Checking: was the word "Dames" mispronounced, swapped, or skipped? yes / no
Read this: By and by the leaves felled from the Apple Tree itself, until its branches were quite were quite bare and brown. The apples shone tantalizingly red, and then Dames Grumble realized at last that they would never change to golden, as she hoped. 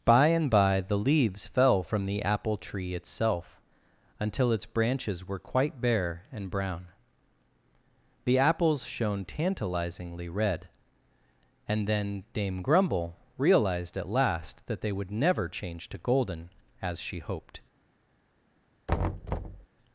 yes